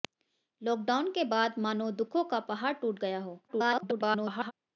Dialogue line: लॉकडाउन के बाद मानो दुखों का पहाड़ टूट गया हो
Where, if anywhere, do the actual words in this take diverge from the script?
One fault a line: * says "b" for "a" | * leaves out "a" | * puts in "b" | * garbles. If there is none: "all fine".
* garbles